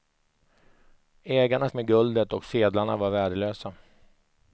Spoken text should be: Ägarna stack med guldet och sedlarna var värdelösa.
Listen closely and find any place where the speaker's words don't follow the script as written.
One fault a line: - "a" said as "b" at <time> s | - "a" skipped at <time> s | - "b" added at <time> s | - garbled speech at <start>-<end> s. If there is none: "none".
- "stack" skipped at 1.7 s